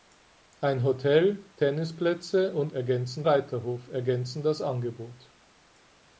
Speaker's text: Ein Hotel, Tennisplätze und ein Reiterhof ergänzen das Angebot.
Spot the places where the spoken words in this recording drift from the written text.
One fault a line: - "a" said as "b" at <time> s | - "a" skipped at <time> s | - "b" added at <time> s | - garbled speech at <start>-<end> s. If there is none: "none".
- "ein" said as "ergänzen" at 2.7 s